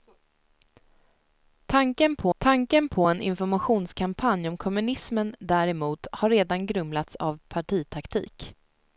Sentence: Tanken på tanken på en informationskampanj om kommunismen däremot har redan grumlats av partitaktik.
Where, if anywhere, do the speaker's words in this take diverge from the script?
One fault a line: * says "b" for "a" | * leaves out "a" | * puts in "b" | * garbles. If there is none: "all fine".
all fine